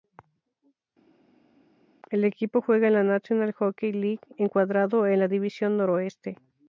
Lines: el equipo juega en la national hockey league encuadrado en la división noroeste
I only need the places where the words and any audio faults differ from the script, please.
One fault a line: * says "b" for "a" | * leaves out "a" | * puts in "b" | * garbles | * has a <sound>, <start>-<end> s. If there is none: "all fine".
all fine